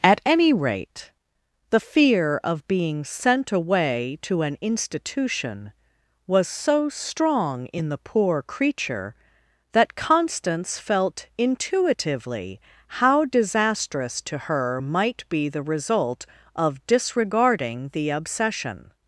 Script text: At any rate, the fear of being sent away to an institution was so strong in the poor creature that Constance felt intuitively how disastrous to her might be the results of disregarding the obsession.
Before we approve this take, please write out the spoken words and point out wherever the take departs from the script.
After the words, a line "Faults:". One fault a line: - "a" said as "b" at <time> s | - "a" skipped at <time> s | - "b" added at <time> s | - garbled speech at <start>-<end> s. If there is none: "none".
At any rate, the fear of being sent away to an institution was so strong in the poor creature that Constance felt intuitively how disastrous to her might be the result of disregarding the obsession.
Faults:
- "results" said as "result" at 15.6 s